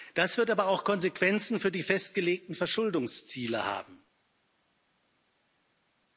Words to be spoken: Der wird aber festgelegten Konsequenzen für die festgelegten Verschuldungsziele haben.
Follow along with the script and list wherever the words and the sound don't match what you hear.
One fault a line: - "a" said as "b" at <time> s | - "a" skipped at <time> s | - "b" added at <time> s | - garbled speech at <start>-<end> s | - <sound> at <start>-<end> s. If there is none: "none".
- "Der" said as "Das" at 0.1 s
- "festgelegten" said as "auch" at 0.7 s